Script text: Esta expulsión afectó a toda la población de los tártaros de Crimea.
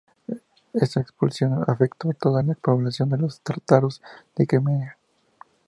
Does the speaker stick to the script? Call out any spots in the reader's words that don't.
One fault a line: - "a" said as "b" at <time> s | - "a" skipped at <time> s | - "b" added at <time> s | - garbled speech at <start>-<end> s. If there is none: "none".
none